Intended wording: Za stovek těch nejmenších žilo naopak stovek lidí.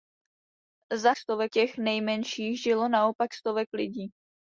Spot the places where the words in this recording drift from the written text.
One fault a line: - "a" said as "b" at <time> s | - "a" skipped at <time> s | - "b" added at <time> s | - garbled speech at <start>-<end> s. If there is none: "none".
none